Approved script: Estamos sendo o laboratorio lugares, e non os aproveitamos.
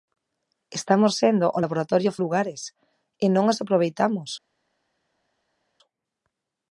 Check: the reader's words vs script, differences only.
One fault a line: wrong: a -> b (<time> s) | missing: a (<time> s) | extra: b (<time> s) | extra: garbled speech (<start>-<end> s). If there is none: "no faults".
no faults